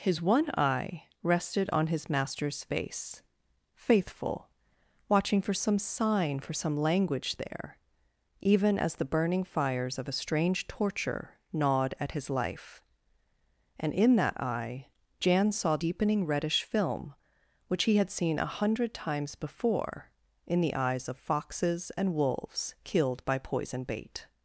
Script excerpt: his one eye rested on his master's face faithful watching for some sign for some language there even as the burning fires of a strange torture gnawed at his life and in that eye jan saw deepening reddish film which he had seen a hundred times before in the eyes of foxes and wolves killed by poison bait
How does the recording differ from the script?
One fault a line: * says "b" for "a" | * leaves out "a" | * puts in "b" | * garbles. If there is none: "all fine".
all fine